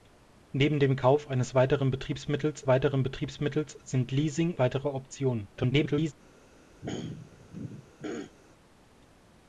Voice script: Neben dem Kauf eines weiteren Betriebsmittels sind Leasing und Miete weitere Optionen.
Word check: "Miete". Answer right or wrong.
wrong